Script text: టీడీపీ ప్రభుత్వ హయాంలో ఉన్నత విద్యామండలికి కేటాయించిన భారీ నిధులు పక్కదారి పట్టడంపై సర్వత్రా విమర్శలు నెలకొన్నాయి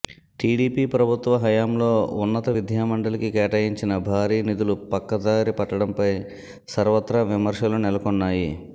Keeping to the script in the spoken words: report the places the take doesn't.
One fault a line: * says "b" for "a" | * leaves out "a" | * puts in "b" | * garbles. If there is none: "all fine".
all fine